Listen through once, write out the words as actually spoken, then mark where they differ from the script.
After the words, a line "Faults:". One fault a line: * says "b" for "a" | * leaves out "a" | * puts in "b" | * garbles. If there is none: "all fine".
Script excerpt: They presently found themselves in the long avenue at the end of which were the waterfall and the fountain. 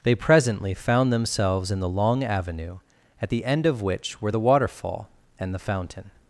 They presently found themselves in the long avenue at the end of which were the waterfall and the fountain.
Faults:
all fine